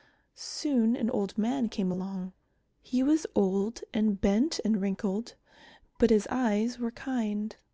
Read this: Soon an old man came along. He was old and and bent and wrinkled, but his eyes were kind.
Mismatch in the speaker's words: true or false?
true